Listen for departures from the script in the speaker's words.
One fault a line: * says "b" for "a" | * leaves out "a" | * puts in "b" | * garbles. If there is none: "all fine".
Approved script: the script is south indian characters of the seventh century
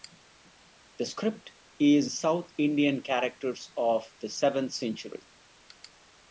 all fine